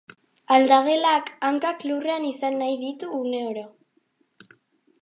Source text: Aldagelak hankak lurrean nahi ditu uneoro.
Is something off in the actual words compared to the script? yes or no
yes